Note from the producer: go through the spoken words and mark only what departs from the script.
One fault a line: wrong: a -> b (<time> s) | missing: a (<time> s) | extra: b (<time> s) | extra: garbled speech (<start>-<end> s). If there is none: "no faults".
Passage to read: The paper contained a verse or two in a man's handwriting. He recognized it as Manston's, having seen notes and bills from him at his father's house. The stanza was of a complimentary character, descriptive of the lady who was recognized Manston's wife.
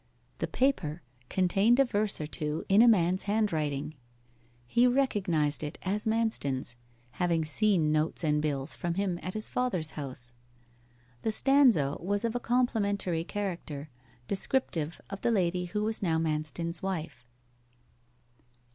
wrong: recognized -> now (16.0 s)